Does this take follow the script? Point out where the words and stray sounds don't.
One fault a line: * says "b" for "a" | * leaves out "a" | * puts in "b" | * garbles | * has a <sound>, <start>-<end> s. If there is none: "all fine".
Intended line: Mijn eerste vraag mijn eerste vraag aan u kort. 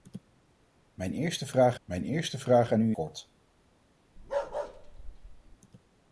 * has a bark, 4.2-5.6 s